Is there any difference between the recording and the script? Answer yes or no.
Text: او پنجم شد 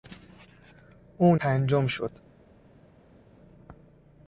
no